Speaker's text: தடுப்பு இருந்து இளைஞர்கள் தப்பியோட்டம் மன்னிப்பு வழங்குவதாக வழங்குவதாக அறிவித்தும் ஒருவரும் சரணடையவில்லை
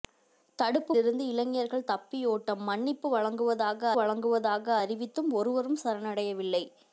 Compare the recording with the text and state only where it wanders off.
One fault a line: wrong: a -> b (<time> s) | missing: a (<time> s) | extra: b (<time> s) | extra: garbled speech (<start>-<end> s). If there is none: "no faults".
no faults